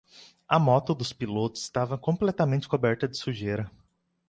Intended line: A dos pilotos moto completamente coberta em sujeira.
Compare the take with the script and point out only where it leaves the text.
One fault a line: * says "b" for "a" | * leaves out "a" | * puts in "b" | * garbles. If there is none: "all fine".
* puts in "moto"
* says "estava" for "moto"
* says "de" for "em"